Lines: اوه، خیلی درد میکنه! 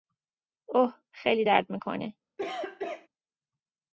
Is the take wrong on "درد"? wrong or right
right